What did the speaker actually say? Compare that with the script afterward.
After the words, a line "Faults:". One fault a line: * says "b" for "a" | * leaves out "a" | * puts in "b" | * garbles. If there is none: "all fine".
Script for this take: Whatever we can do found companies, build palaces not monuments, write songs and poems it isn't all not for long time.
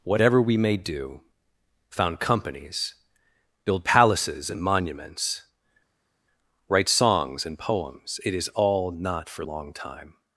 Whatever we may do found companies, build palaces and monuments, write songs and poems it is all not for long time.
Faults:
* says "may" for "can"
* says "and" for "not"
* says "is" for "isn't"